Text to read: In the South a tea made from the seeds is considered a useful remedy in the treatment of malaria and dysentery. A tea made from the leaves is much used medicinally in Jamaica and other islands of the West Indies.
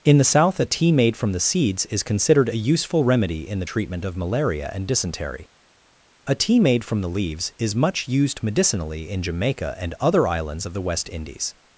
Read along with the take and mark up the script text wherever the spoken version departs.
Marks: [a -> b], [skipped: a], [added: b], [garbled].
In the South a tea made from the seeds is considered a useful remedy in the treatment of malaria and dysentery. A tea made from the leaves is much used medicinally in Jamaica and other islands of the West Indies.